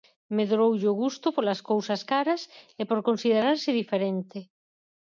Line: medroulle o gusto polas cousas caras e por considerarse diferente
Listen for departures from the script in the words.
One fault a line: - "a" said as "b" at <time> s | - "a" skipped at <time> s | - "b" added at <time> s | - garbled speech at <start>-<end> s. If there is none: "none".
none